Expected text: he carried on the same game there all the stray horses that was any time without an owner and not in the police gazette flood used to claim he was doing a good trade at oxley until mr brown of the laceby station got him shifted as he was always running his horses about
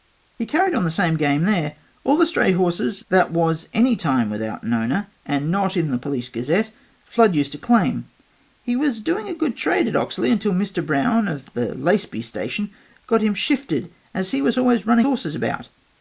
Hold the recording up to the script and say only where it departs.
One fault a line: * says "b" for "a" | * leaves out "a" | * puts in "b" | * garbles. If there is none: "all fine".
* leaves out "his"